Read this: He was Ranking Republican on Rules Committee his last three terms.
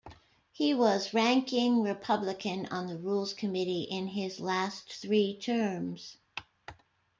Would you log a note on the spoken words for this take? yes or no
yes